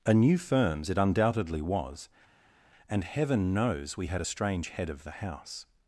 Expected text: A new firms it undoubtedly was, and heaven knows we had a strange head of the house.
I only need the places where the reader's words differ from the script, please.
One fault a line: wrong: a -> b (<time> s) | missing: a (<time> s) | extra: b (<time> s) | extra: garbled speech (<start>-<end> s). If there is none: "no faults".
no faults